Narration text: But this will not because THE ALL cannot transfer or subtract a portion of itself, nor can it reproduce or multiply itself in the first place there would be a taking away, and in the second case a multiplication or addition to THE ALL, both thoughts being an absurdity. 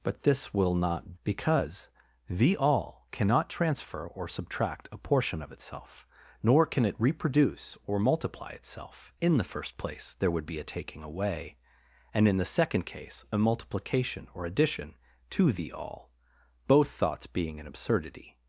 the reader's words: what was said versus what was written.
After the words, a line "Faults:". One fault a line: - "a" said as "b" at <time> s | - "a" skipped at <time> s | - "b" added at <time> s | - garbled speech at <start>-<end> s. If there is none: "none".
But this will not because THE ALL cannot transfer or subtract a portion of itself, nor can it reproduce or multiply itself in the first place there would be a taking away, and in the second case a multiplication or addition to THE ALL, both thoughts being an absurdity.
Faults:
none